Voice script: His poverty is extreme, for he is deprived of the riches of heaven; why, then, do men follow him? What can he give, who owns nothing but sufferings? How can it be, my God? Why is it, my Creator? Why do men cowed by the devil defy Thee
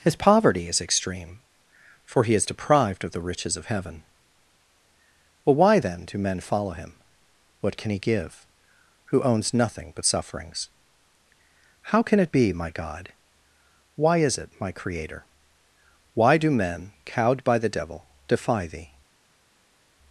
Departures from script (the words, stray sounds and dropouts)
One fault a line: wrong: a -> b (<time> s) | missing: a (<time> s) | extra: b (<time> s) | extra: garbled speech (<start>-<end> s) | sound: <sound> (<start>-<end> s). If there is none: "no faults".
extra: well (5.5 s)